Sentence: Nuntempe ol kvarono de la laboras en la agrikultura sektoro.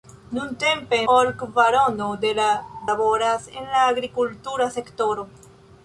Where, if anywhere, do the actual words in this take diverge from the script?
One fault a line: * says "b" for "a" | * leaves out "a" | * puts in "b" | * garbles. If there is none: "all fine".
all fine